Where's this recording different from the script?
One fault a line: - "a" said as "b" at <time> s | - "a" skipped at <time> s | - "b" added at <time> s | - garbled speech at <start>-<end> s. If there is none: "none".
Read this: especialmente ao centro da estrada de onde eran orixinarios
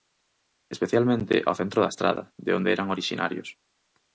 none